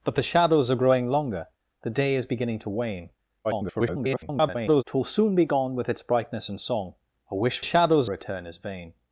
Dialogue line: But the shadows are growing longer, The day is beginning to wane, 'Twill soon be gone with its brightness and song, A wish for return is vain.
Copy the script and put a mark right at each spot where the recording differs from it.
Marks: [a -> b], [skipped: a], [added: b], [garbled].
But the shadows are growing longer, The day is beginning to wane, [garbled] 'Twill soon be gone with its brightness and song, A wish [for -> shadows] return is vain.